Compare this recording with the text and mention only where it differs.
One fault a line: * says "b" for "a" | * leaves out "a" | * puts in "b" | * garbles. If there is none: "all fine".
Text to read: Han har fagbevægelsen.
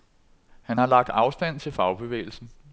* puts in "lagt afstand til"